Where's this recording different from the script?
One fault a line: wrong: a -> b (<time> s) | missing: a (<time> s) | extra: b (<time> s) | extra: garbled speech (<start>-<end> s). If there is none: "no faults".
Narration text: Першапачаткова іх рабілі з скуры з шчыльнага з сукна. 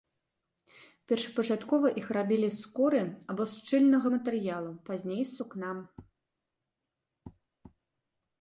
extra: або (3.3 s)
extra: матэрыялу пазней (4.1 s)